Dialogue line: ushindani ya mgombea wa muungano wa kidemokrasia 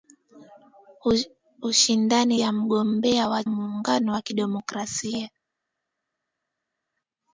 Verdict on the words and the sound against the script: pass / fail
pass